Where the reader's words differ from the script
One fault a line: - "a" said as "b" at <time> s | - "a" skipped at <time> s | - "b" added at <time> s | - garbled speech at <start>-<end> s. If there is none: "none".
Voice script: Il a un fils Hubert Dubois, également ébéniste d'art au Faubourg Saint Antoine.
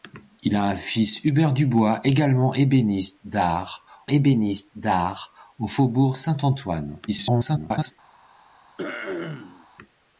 - "ébéniste d'art" added at 4.1 s
- garbled speech at 7.1-7.9 s